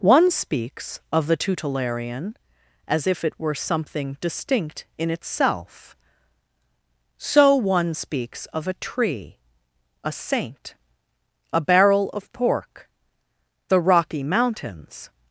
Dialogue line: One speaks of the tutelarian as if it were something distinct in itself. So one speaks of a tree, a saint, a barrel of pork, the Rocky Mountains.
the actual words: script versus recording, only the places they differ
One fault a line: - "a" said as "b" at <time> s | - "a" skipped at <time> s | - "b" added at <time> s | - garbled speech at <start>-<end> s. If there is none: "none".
none